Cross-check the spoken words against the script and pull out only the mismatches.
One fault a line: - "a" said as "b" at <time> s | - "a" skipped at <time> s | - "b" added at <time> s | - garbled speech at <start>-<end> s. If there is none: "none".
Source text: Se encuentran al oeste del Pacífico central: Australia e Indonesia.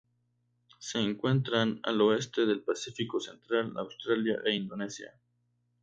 none